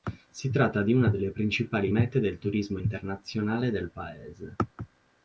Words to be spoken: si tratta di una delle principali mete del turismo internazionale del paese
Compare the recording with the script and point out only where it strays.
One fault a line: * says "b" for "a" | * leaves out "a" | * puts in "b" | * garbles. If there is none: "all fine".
all fine